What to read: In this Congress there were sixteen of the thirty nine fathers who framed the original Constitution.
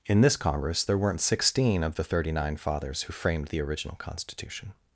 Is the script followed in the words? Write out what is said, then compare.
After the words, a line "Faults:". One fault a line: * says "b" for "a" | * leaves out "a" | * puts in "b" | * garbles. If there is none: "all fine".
In this Congress there weren't sixteen of the thirty nine fathers who framed the original Constitution.
Faults:
* says "weren't" for "were"